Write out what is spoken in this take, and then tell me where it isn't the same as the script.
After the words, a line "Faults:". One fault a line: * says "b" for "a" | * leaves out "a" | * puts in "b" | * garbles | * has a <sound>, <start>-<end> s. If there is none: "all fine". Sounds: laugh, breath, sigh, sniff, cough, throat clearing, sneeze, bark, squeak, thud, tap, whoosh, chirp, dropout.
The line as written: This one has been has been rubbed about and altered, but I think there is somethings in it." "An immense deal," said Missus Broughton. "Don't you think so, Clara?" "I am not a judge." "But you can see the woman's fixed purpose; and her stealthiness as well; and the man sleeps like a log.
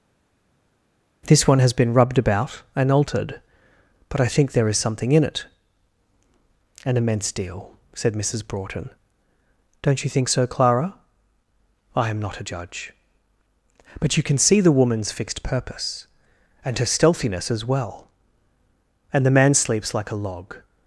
This one has been rubbed about and altered, but I think there is something in it." "An immense deal," said Missus Broughton. "Don't you think so, Clara?" "I am not a judge." "But you can see the woman's fixed purpose; and her stealthiness as well; and the man sleeps like a log.
Faults:
* leaves out "has been"
* says "something" for "somethings"